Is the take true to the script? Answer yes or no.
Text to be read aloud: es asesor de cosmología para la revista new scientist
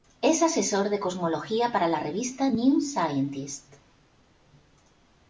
yes